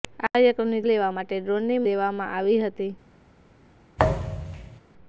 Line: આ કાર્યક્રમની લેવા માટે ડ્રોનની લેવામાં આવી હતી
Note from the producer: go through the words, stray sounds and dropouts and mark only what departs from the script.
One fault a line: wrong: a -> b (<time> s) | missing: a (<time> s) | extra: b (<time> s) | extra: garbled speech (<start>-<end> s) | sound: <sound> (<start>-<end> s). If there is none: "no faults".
sound: thud (4.0-4.8 s)